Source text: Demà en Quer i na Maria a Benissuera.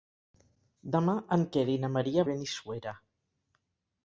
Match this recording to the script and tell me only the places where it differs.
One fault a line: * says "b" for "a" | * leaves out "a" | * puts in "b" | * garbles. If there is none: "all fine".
all fine